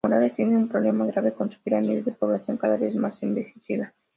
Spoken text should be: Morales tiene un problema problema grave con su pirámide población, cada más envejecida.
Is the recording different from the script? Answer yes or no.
yes